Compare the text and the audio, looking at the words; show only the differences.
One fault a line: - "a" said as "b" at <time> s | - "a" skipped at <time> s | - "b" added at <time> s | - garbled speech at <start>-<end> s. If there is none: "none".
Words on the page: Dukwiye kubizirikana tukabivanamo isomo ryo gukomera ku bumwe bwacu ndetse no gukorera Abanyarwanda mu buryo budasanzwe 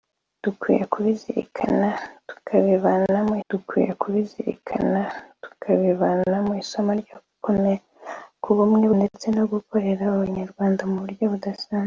- "dukwiye kubizirikana tukabivanamo" added at 3.5 s
- "bwacu" skipped at 8.9 s